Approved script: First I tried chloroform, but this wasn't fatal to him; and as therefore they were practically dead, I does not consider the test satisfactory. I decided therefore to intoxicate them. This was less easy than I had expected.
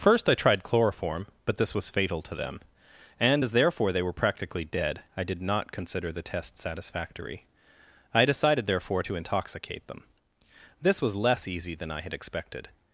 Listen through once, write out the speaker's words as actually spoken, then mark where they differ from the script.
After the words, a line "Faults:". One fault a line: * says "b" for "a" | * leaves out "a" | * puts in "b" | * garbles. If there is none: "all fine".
First I tried chloroform, but this was fatal to them; and as therefore they were practically dead, I did not consider the test satisfactory. I decided therefore to intoxicate them. This was less easy than I had expected.
Faults:
* says "was" for "wasn't"
* says "them" for "him"
* says "did" for "does"